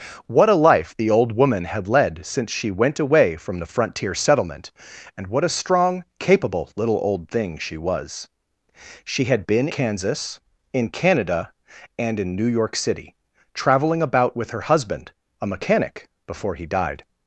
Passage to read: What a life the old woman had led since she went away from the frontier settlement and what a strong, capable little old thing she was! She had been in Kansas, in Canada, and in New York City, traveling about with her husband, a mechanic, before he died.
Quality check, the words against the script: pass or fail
fail